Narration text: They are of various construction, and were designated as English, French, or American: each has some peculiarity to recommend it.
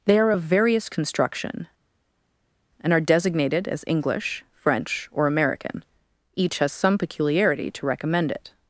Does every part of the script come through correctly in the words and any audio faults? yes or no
no